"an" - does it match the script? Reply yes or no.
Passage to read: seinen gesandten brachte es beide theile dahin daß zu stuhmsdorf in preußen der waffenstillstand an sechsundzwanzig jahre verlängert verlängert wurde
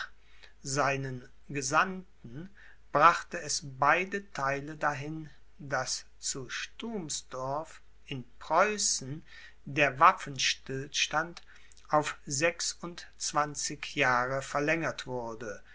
no